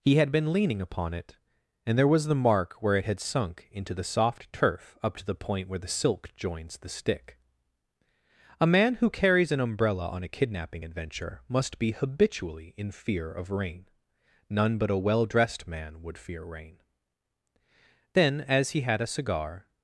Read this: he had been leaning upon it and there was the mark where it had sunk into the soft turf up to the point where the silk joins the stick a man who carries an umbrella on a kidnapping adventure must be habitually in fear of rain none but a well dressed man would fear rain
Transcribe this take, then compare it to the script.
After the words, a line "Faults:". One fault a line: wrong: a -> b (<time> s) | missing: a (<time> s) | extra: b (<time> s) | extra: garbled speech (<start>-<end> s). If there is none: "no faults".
he had been leaning upon it and there was the mark where it had sunk into the soft turf up to the point where the silk joins the stick a man who carries an umbrella on a kidnapping adventure must be habitually in fear of rain none but a well dressed man would fear rain then as he had a cigar
Faults:
extra: then as he had a cigar (18.1 s)